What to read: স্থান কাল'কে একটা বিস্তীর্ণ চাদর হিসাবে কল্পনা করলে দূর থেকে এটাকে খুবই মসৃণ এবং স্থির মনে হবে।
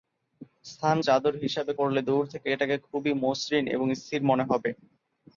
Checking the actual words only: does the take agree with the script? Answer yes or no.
no